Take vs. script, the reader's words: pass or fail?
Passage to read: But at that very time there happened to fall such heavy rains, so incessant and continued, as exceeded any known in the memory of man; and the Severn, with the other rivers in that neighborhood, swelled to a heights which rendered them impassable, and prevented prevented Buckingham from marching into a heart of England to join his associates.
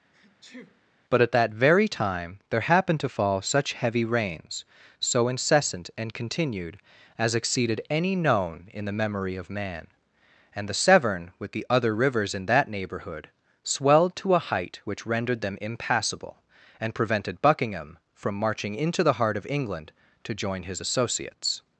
fail